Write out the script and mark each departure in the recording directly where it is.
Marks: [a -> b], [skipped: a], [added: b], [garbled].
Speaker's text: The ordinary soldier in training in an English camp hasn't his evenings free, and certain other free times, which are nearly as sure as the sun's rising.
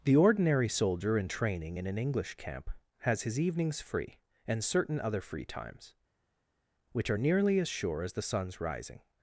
The ordinary soldier in training in an English camp [hasn't -> has] his evenings free, and certain other free times, which are nearly as sure as the sun's rising.